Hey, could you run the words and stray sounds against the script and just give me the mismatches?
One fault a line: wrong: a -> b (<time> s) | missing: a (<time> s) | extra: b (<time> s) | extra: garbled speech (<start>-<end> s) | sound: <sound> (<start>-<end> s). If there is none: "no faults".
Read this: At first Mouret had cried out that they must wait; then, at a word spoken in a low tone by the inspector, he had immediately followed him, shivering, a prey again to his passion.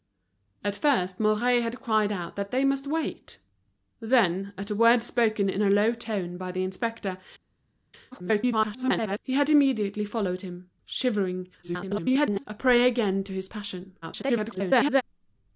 extra: garbled speech (8.1-9.2 s)
extra: garbled speech (11.6-12.4 s)
extra: garbled speech (14.0-15.0 s)